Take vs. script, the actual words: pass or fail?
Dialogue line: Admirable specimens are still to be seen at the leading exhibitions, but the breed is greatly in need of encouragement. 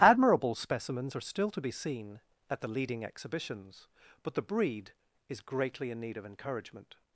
pass